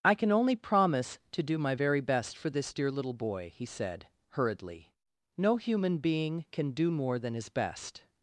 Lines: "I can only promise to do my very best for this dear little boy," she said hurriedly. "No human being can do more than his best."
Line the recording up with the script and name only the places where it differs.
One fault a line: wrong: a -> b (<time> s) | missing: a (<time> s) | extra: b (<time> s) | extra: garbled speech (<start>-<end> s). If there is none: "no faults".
wrong: she -> he (3.5 s)